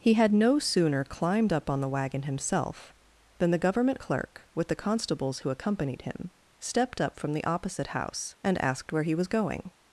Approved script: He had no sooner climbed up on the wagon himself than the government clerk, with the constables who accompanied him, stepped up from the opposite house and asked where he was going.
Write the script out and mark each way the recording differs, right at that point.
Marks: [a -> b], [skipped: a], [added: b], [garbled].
He had no sooner climbed up on the wagon himself than the government clerk, with the constables who accompanied him, stepped up from the opposite house and asked where he was going.